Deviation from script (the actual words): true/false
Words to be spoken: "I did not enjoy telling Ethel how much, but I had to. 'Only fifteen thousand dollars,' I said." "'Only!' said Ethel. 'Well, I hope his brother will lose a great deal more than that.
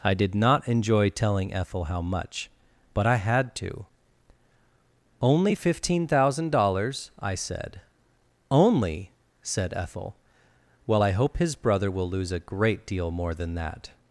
false